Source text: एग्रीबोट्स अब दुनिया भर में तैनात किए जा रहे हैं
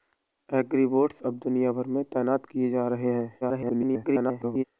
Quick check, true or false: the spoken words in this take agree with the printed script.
false